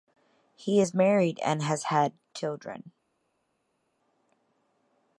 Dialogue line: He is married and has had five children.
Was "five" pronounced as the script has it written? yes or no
no